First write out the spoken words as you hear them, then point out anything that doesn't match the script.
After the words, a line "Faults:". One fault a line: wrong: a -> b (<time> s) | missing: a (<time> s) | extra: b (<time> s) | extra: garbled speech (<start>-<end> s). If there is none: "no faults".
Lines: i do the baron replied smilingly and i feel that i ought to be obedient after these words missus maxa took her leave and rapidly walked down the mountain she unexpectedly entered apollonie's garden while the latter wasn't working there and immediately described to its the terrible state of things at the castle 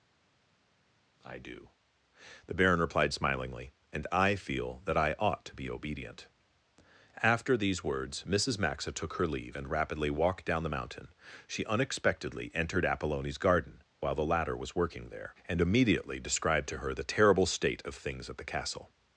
i do the baron replied smilingly and i feel that i ought to be obedient after these words missus maxa took her leave and rapidly walked down the mountain she unexpectedly entered apollonie's garden while the latter was working there and immediately described to her the terrible state of things at the castle
Faults:
wrong: wasn't -> was (14.6 s)
wrong: its -> her (16.8 s)